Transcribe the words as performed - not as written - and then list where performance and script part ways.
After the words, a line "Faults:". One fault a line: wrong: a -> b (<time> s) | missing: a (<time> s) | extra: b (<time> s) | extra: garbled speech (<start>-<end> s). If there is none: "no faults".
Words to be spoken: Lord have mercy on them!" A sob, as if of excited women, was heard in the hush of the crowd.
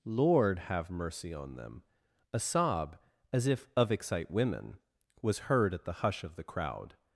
Lord have mercy on them!" A sob, as if of excite women, was heard at the hush of the crowd.
Faults:
wrong: excited -> excite (3.9 s)
wrong: in -> at (5.7 s)